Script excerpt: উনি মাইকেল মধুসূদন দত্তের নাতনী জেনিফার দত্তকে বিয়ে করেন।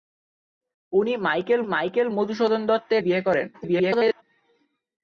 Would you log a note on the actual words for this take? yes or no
yes